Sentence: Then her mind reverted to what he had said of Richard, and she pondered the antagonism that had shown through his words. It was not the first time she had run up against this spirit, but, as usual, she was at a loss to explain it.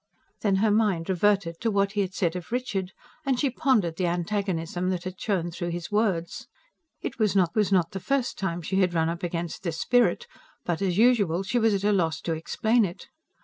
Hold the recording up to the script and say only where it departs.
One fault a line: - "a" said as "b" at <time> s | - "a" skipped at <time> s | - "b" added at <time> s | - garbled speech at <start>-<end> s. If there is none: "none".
- "was not" added at 7.6 s